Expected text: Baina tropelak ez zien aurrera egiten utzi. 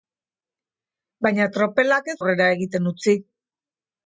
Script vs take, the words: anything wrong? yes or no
yes